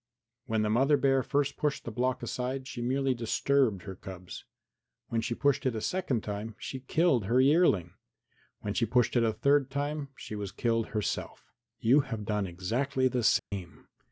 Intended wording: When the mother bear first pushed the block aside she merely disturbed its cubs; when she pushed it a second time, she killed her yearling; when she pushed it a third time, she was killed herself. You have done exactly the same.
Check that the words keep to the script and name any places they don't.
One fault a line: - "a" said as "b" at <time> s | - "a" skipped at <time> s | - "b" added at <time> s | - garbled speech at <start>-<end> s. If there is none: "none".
- "its" said as "her" at 3.8 s